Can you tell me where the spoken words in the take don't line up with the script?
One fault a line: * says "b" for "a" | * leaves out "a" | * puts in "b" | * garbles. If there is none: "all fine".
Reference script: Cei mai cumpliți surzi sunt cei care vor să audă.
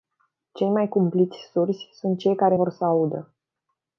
all fine